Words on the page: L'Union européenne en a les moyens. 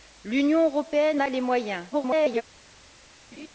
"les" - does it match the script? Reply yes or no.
yes